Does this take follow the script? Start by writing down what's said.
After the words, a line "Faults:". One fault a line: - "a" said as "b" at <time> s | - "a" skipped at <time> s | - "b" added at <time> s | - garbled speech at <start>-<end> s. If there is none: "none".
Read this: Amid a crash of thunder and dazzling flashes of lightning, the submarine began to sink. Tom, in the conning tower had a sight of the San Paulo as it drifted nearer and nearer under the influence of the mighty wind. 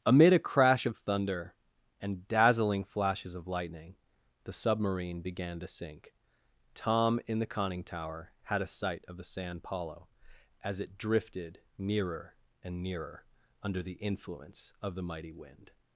Amid a crash of thunder and dazzling flashes of lightning, the submarine began to sink. Tom, in the conning tower had a sight of the San Paulo as it drifted nearer and nearer under the influence of the mighty wind.
Faults:
none